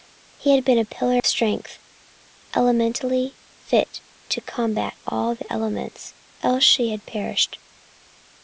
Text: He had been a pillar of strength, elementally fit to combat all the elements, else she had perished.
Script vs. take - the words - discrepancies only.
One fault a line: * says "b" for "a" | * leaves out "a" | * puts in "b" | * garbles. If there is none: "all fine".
* leaves out "of"